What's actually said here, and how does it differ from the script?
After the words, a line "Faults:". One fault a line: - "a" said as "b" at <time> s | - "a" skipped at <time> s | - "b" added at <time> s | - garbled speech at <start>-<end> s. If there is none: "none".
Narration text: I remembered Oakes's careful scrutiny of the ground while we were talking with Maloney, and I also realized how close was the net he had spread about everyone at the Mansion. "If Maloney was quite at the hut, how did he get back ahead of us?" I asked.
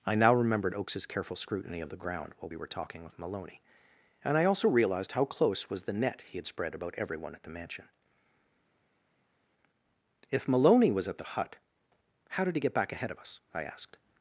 I now remembered Oakes's careful scrutiny of the ground while we were talking with Maloney, and I also realized how close was the net he had spread about everyone at the Mansion. "If Maloney was at the hut, how did he get back ahead of us?" I asked.
Faults:
- "now" added at 0.1 s
- "quite" skipped at 11.1 s